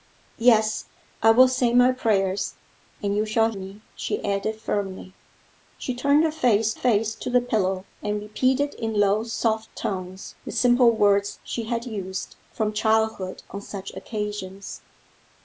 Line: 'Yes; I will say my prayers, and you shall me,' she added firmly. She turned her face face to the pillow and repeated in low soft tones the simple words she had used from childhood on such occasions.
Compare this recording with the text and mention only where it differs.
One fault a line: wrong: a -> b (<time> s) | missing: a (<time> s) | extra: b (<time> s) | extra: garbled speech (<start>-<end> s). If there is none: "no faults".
no faults